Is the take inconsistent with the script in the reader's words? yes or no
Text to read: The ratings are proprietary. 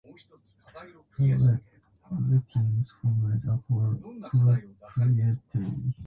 yes